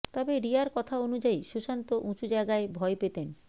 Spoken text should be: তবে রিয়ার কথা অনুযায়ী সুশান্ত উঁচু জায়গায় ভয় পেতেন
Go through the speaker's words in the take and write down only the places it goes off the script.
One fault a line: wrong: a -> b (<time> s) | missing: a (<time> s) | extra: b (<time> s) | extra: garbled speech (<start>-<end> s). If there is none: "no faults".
no faults